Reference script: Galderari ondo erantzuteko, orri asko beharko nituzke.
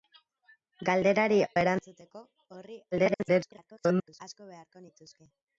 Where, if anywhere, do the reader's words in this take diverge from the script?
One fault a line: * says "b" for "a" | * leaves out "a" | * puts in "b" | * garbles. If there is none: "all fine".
* leaves out "ondo"
* garbles